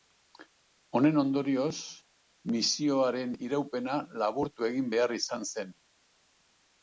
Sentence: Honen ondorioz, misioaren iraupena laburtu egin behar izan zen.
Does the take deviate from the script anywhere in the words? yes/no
no